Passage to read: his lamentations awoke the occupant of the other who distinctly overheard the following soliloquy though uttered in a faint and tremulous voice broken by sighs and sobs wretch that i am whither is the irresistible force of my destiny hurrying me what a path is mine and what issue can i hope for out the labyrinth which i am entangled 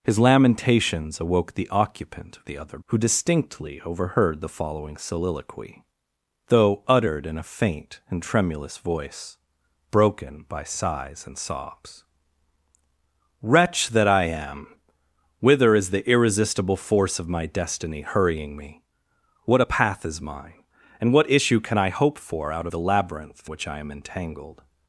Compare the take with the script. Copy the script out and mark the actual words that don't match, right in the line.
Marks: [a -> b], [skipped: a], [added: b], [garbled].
his lamentations awoke the occupant of the other who distinctly overheard the following soliloquy though uttered in a faint and tremulous voice broken by sighs and sobs wretch that i am whither is the irresistible force of my destiny hurrying me what a path is mine and what issue can i hope for out the labyrinth which i am entangled